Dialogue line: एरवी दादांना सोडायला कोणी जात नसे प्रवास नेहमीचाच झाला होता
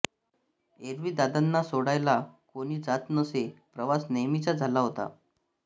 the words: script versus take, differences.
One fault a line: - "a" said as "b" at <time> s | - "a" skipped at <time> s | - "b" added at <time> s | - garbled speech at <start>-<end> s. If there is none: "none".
none